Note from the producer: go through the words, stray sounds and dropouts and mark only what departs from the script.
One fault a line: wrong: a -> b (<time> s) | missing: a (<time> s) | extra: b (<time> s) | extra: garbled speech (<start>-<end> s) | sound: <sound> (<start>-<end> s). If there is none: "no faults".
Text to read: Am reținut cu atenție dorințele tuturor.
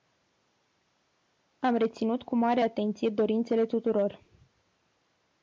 extra: mare (2.4 s)